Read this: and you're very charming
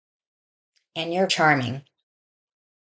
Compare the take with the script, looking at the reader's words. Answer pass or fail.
fail